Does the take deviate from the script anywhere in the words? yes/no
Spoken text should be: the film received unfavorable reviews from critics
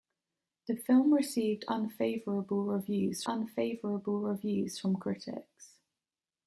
yes